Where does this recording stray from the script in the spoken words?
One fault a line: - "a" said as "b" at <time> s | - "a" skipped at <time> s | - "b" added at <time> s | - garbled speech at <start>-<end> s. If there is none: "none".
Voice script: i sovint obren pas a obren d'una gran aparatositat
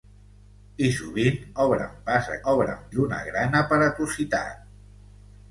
none